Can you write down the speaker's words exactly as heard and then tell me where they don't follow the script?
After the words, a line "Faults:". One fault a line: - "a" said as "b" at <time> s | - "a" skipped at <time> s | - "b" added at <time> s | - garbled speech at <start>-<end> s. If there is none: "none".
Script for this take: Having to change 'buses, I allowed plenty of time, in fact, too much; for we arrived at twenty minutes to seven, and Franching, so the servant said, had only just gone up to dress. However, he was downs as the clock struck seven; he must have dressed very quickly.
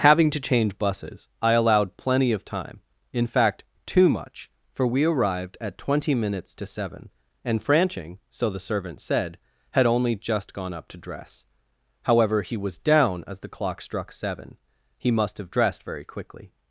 Having to change 'buses, I allowed plenty of time, in fact, too much; for we arrived at twenty minutes to seven, and Franching, so the servant said, had only just gone up to dress. However, he was down as the clock struck seven; he must have dressed very quickly.
Faults:
- "downs" said as "down" at 12.8 s